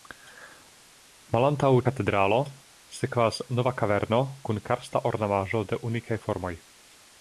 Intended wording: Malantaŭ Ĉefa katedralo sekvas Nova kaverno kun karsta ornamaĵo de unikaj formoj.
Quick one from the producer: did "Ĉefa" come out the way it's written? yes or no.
no